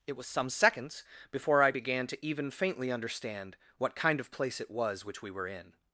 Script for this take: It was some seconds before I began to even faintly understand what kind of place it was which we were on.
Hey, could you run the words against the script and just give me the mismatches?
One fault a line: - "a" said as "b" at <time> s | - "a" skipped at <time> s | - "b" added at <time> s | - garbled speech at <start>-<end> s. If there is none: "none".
- "on" said as "in" at 5.5 s